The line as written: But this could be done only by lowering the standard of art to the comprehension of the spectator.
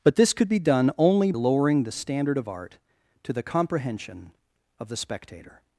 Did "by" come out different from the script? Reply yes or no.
yes